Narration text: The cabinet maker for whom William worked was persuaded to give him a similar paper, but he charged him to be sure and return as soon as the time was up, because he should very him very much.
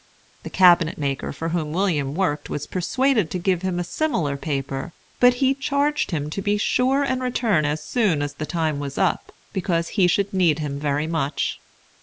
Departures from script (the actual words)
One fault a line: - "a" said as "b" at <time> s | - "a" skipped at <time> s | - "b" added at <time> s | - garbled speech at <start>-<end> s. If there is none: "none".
- "very" said as "need" at 10.3 s